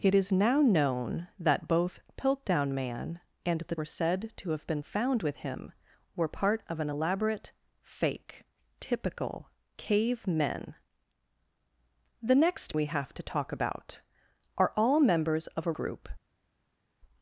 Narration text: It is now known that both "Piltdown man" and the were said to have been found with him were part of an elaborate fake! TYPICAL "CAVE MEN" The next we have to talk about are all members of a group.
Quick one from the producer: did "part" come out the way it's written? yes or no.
yes